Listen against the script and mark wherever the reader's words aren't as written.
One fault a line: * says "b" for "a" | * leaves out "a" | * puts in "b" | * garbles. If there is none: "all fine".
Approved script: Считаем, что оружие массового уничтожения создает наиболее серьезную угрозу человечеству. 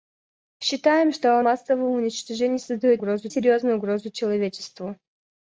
* leaves out "оружие"
* says "угрозу" for "наиболее"